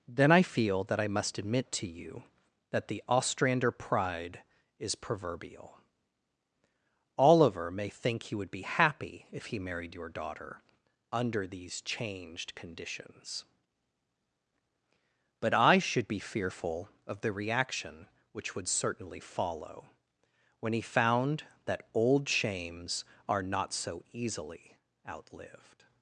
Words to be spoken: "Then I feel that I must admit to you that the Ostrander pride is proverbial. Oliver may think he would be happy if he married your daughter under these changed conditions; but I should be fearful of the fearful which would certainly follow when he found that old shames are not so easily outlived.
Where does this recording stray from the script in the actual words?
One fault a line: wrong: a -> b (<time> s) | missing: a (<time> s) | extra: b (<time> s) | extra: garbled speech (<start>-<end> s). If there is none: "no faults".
wrong: fearful -> reaction (17.3 s)